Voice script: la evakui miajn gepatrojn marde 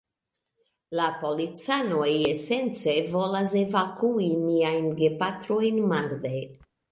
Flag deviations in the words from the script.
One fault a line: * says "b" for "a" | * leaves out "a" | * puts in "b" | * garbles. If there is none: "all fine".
* puts in "policanoj esence volas"